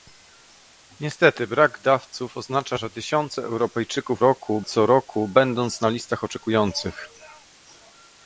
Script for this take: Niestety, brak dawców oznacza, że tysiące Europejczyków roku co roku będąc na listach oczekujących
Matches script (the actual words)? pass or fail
pass